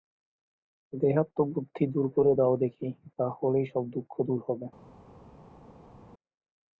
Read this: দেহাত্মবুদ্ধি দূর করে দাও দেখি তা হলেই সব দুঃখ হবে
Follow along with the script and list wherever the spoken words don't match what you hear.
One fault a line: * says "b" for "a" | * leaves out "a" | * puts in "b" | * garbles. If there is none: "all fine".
* puts in "দূর"